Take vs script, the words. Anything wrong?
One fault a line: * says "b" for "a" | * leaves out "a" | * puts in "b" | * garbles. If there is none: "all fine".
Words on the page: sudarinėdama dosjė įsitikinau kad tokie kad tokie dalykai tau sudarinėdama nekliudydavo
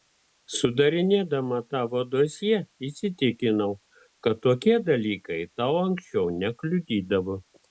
* puts in "tavo"
* leaves out "kad tokie"
* says "anksčiau" for "sudarinėdama"